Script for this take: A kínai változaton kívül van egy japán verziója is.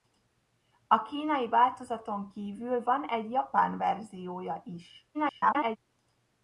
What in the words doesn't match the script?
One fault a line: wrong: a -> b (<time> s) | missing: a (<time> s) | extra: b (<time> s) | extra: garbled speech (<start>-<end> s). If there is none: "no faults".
extra: garbled speech (5.1-5.8 s)